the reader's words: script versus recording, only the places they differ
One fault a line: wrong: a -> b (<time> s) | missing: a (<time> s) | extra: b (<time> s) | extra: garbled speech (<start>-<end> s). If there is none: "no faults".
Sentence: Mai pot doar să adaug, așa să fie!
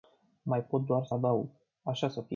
no faults